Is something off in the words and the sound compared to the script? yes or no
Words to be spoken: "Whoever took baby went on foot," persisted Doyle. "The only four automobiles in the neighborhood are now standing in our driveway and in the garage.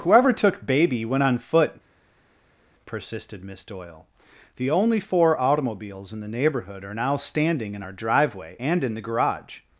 yes